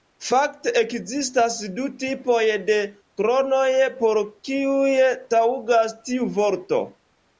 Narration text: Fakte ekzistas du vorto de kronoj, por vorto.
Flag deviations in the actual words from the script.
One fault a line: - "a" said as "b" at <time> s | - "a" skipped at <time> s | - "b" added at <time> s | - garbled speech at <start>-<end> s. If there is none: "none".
- "vorto" said as "tipoj" at 2.0 s
- "kiuj taŭgas tiu" added at 4.5 s